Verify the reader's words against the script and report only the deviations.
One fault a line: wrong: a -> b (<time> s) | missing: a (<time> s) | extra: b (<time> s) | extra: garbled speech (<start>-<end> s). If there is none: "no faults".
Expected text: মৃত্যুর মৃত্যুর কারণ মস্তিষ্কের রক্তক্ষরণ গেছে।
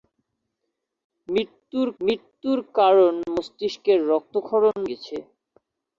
no faults